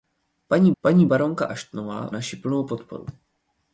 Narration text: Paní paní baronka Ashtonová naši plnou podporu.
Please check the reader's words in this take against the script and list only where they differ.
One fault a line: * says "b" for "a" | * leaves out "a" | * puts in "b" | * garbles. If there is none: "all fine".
all fine